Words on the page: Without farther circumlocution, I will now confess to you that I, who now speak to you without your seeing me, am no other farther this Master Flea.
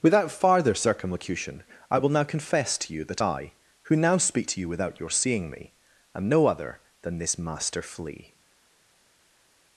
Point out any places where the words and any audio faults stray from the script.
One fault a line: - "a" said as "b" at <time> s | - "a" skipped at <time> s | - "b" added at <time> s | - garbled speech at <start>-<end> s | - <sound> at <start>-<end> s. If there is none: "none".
- "farther" said as "than" at 7.0 s